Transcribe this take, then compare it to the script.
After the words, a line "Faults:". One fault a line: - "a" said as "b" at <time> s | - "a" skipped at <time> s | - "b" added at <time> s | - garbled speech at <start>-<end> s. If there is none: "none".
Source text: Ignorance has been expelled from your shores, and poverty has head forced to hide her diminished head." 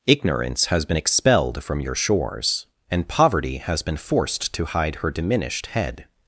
Ignorance has been expelled from your shores, and poverty has been forced to hide her diminished head."
Faults:
- "head" said as "been" at 3.8 s